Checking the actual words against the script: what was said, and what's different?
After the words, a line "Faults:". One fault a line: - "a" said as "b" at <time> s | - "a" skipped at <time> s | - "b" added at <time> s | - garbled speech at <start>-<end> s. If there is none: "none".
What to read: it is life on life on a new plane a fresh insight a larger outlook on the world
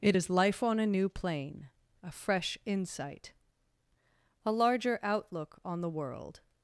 it is life on a new plane a fresh insight a larger outlook on the world
Faults:
- "life on" skipped at 0.8 s